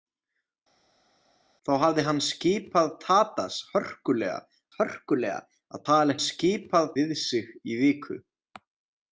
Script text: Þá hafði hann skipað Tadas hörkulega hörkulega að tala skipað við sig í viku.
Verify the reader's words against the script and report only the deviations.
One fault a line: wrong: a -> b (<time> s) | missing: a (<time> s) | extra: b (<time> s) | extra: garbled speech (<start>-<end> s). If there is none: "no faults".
no faults